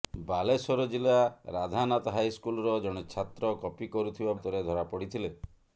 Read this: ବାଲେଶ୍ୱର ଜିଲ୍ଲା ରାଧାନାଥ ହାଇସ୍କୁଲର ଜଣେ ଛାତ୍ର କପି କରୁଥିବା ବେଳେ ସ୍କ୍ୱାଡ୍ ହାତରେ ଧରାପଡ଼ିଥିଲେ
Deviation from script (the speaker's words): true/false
true